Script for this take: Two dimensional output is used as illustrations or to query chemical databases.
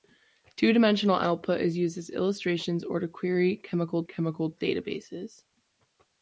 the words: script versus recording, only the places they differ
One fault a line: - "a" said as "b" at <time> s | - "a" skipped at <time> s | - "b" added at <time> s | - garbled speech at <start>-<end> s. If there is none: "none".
- "chemical" added at 4.0 s